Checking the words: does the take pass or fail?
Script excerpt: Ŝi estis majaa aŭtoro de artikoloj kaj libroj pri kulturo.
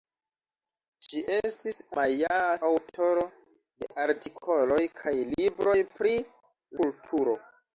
pass